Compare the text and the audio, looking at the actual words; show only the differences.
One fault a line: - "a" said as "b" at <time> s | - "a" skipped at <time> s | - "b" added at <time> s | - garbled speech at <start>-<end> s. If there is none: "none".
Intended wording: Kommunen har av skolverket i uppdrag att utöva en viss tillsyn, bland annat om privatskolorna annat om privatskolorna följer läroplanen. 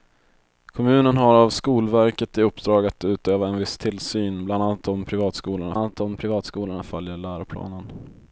none